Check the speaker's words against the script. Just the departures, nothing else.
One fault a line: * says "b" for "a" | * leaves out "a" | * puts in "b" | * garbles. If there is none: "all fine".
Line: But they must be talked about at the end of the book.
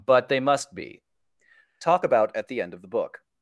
* says "talk" for "talked"